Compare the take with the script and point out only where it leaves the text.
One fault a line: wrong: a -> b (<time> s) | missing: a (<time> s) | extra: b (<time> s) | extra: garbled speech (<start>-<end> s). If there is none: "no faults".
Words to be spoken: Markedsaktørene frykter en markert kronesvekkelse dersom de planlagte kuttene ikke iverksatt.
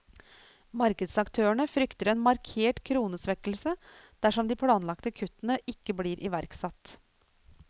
extra: blir (6.0 s)